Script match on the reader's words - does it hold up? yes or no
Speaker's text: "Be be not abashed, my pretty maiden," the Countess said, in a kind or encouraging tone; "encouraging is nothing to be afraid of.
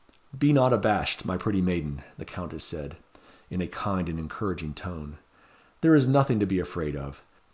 no